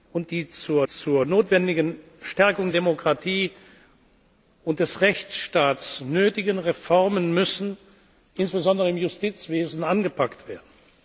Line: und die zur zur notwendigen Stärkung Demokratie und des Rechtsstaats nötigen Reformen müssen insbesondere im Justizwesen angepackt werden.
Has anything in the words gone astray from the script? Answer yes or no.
no